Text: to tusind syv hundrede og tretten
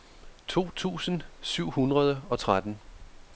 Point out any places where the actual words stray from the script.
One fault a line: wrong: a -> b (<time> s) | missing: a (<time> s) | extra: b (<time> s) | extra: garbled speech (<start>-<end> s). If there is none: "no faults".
no faults